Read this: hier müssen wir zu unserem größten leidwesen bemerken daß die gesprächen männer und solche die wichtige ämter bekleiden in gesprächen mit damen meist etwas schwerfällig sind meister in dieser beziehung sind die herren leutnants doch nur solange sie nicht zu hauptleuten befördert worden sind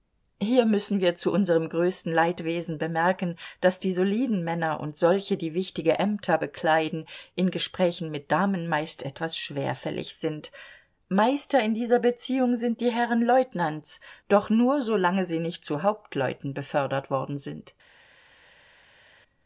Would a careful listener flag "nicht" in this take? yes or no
no